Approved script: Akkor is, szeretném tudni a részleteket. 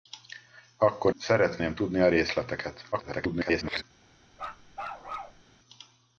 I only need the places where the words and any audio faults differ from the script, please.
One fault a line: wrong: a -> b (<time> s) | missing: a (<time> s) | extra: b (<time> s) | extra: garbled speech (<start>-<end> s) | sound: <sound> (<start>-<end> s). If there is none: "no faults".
missing: is (1.1 s)
extra: garbled speech (2.9-3.8 s)
sound: bark (4.3-5.4 s)